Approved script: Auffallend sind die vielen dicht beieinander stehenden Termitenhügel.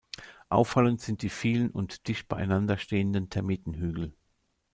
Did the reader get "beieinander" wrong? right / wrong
right